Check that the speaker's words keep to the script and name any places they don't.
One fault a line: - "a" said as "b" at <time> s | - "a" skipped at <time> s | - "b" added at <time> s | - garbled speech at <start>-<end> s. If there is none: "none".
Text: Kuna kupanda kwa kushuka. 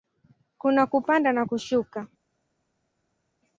- "kwa" said as "na" at 1.3 s